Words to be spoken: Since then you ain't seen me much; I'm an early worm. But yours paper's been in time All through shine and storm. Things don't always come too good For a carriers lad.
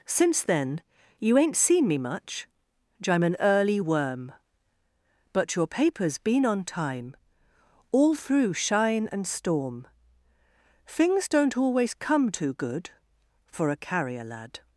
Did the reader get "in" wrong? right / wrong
wrong